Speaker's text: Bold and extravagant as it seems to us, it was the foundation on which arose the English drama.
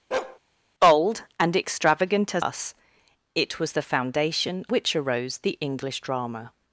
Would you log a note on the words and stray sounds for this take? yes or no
yes